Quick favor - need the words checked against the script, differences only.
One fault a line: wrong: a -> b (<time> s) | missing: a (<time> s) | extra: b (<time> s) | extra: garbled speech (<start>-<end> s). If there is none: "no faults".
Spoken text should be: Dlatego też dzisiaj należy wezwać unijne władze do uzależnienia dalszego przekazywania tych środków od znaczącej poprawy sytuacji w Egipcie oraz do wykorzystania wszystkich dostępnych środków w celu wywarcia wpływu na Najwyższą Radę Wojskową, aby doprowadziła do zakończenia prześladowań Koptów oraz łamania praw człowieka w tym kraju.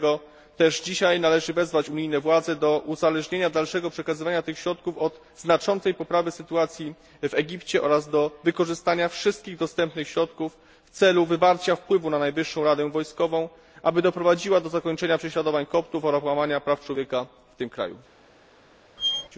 no faults